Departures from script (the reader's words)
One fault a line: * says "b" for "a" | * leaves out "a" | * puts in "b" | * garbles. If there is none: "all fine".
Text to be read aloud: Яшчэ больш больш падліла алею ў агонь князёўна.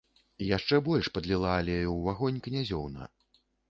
* leaves out "больш"